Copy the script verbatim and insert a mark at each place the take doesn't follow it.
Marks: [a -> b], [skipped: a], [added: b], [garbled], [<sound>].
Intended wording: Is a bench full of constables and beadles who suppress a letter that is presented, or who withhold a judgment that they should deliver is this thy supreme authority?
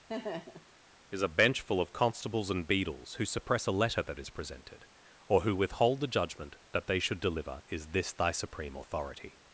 [laugh] Is a bench full of constables and beadles who suppress a letter that is presented, or who withhold [a -> the] judgment that they should deliver is this thy supreme authority?